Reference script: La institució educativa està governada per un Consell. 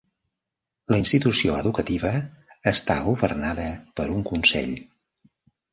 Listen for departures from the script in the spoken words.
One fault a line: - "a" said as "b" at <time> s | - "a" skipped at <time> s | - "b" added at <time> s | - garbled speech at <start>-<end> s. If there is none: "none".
none